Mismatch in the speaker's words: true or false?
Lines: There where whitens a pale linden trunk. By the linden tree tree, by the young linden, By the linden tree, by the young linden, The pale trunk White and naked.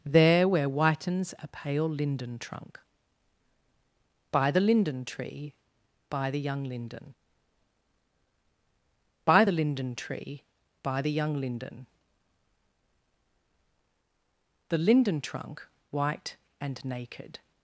true